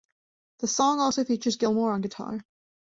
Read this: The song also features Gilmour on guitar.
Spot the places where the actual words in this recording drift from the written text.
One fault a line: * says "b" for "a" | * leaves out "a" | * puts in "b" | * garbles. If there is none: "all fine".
all fine